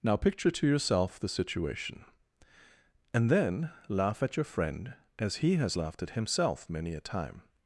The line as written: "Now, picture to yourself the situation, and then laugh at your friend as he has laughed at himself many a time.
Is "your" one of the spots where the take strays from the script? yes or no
no